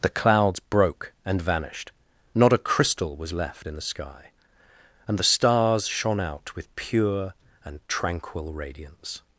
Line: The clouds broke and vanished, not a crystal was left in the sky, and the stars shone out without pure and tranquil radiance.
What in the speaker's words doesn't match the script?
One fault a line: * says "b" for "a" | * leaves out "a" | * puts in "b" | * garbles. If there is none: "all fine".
* says "with" for "without"